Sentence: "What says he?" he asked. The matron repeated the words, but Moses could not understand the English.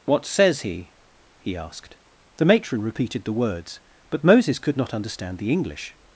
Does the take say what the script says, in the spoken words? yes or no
yes